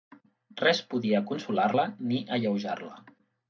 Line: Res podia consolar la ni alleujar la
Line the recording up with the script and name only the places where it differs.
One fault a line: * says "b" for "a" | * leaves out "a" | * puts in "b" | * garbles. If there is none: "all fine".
all fine